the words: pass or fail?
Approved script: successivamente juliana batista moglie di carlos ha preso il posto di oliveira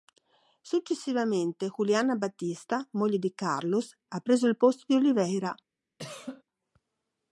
pass